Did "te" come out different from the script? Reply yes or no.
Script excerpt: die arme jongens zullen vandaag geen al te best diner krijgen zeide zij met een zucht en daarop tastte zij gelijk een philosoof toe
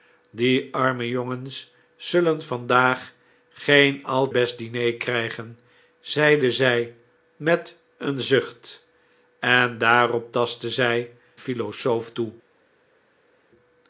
yes